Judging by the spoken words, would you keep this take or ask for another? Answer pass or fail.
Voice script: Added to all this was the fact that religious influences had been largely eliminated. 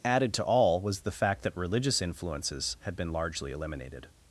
fail